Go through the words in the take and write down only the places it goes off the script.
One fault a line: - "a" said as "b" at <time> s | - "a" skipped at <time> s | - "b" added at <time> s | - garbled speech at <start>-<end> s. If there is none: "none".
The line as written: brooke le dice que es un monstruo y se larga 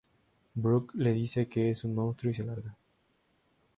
none